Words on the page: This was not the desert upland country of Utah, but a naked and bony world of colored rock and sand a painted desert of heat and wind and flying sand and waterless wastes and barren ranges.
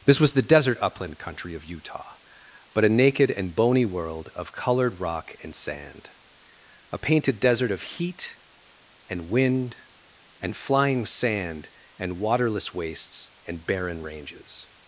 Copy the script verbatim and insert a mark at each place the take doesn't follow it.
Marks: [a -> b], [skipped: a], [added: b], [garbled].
This was [skipped: not] the desert upland country of Utah, but a naked and bony world of colored rock and sand a painted desert of heat and wind and flying sand and waterless wastes and barren ranges.